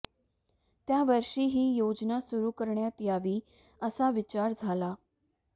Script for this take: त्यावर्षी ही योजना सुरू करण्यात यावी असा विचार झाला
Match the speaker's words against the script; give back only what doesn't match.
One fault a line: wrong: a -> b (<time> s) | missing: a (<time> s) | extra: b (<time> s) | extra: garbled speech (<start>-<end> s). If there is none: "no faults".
no faults